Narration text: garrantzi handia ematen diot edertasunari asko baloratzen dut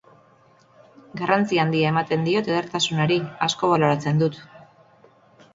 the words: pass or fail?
pass